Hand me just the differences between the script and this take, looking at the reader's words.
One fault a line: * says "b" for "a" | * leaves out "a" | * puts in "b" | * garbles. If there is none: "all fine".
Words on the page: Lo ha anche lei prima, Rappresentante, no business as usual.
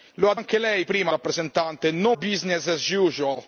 all fine